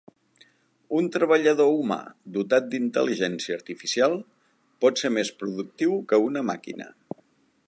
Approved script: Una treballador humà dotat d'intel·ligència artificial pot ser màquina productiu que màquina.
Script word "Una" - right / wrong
wrong